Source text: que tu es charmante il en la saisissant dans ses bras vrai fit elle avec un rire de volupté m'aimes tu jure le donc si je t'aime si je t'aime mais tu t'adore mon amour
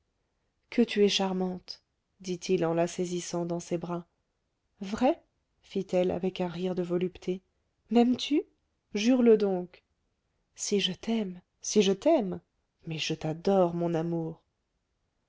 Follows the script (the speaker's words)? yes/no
no